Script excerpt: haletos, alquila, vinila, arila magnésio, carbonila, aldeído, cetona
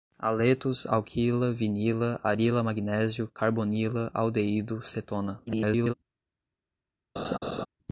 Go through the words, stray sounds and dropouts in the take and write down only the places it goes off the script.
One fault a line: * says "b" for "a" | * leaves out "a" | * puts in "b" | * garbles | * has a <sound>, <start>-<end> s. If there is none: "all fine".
* garbles
* has a laugh, 7.2-7.7 s